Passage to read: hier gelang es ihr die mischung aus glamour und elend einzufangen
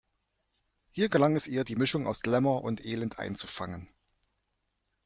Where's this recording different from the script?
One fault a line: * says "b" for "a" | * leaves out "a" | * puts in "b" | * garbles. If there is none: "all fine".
all fine